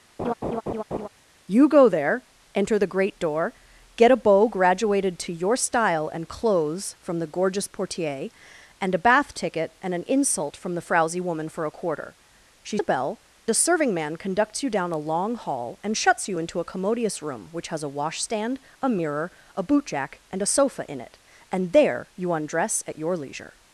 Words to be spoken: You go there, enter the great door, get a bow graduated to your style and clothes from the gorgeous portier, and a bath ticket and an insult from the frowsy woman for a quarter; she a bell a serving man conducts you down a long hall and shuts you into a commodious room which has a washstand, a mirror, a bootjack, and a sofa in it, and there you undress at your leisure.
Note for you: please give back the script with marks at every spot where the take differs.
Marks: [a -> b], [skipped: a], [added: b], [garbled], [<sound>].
[laugh] You go there, enter the great door, get a bow graduated to your style and clothes from the gorgeous portier, and a bath ticket and an insult from the frowsy woman for a quarter; she a bell a serving man conducts you down a long hall and shuts you into a commodious room which has a washstand, a mirror, a bootjack, and a sofa in it, and there you undress at your leisure.